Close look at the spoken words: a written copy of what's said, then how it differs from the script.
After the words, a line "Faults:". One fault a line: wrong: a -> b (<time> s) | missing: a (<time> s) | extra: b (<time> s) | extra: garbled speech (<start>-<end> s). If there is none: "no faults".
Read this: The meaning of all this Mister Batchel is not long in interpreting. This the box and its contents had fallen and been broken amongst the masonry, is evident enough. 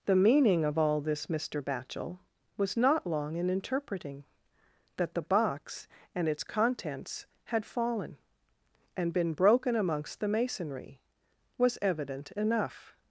The meaning of all this Mister Batchel was not long in interpreting. That the box and its contents had fallen and been broken amongst the masonry, was evident enough.
Faults:
wrong: is -> was (2.6 s)
wrong: This -> That (5.0 s)
wrong: is -> was (11.6 s)